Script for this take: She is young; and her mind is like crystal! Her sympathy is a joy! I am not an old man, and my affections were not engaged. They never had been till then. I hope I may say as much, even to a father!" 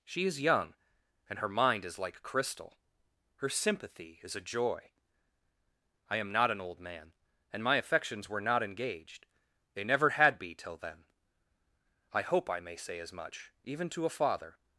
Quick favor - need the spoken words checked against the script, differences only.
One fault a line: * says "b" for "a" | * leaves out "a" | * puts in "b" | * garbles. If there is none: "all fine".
* says "be" for "been"